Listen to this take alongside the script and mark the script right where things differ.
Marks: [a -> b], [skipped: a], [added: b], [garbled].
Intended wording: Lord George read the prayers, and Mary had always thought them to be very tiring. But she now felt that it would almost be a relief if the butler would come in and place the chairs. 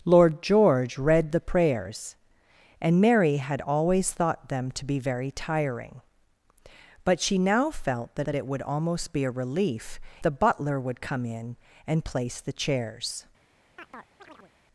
Lord George read the prayers, and Mary had always thought them to be very tiring. But she now felt that [added: that] it would almost be a relief [skipped: if] the butler would come in and place the chairs.